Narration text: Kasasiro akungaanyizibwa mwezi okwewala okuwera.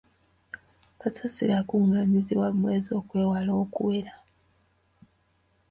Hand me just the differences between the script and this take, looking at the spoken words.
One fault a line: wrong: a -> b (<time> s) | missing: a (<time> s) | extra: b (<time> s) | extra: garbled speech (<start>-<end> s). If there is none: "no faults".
no faults